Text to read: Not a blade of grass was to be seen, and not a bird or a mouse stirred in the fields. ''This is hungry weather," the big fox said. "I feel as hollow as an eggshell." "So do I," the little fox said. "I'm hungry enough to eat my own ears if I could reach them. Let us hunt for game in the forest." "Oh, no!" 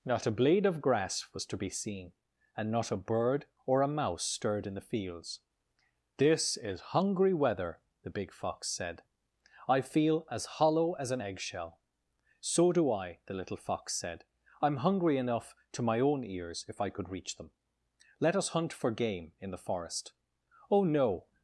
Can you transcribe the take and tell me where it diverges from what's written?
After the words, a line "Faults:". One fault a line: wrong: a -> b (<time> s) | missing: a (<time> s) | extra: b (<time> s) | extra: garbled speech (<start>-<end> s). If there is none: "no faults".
Not a blade of grass was to be seen, and not a bird or a mouse stirred in the fields. ''This is hungry weather," the big fox said. "I feel as hollow as an eggshell." "So do I," the little fox said. "I'm hungry enough to my own ears if I could reach them. Let us hunt for game in the forest." "Oh, no!"
Faults:
missing: eat (15.9 s)